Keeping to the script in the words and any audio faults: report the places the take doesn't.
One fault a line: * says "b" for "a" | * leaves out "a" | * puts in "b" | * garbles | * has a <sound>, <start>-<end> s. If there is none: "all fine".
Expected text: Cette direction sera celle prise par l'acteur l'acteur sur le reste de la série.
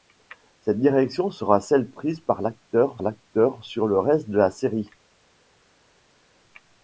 all fine